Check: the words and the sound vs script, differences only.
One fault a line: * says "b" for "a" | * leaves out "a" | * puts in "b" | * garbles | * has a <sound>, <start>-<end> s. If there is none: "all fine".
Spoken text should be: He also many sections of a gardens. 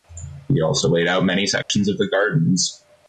* puts in "laid out"
* has a dropout, 1.6-1.7 s
* says "the" for "a"